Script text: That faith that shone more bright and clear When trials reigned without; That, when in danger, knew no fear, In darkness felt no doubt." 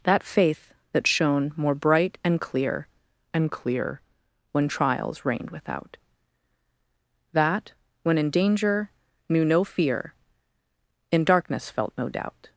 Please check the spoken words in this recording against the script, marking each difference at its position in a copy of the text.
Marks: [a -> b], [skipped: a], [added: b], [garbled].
That faith that shone more bright and clear [added: and clear] When trials reigned without; That, when in danger, knew no fear, In darkness felt no doubt."